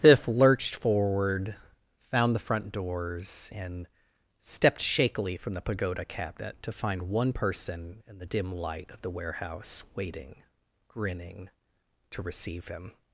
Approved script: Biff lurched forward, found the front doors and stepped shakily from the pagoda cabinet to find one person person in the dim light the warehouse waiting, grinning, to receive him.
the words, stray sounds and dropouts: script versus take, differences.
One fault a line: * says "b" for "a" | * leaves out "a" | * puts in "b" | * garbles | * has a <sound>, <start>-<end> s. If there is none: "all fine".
* leaves out "person"
* puts in "of"